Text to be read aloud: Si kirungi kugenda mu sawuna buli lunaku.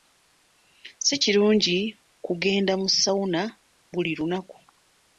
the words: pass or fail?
pass